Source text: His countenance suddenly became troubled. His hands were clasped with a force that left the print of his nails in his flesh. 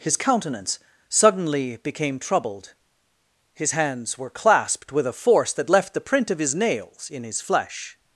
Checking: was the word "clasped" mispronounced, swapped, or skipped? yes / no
no